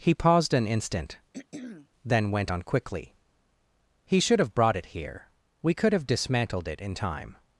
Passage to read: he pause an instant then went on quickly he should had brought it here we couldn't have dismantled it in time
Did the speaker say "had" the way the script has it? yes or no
no